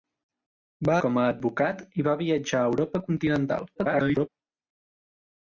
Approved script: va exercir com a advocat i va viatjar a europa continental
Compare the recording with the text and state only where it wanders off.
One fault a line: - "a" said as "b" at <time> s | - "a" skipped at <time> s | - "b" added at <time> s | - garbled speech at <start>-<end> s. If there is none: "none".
- "exercir" skipped at 0.9 s
- garbled speech at 3.8-4.3 s